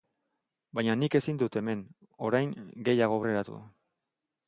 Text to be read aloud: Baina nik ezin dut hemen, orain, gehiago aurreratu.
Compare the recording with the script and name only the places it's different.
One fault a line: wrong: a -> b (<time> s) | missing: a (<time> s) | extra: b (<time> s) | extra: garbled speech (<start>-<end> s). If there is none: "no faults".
no faults